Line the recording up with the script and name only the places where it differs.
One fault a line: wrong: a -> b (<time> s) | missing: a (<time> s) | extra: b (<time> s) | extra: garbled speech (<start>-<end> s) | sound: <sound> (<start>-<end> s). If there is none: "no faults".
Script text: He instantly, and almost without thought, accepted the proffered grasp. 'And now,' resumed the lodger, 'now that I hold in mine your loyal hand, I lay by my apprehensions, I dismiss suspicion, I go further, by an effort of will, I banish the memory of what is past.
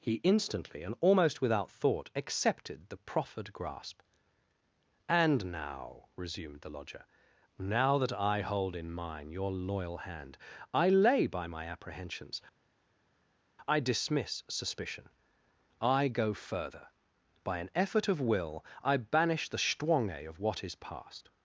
wrong: memory -> stwange (19.6 s)